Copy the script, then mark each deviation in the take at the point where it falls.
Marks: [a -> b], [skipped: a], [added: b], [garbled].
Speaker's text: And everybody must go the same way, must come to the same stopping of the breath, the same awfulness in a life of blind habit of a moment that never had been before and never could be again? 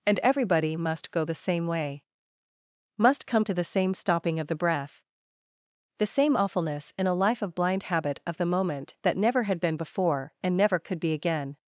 And everybody must go the same way, must come to the same stopping of the breath, the same awfulness in a life of blind habit of [a -> the] moment that never had been before and never could be again?